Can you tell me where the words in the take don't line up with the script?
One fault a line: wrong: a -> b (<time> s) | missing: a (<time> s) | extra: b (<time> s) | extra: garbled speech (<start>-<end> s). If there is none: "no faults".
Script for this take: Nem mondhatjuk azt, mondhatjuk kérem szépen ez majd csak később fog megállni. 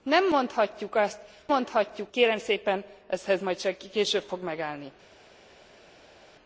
no faults